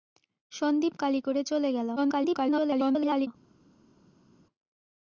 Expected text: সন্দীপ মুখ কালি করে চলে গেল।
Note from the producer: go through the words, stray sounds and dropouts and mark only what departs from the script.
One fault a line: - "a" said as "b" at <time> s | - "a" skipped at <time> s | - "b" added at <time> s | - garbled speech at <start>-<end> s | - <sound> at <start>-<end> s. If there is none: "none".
- "মুখ" skipped at 0.9 s
- garbled speech at 2.0-3.3 s